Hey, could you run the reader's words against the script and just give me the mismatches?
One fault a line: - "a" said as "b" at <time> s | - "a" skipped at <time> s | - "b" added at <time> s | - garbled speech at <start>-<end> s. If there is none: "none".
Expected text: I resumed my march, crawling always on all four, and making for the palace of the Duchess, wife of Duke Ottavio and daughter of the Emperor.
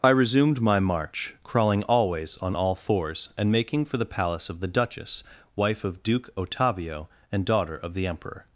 - "four" said as "fours" at 2.7 s